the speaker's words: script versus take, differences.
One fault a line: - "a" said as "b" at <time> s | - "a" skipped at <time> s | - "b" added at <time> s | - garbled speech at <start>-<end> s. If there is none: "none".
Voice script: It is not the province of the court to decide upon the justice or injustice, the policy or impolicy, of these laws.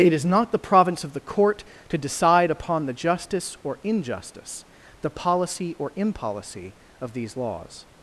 none